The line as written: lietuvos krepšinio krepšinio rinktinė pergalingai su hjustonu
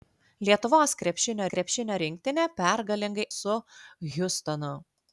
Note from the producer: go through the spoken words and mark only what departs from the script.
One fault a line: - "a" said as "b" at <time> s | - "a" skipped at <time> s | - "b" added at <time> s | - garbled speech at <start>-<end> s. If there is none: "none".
none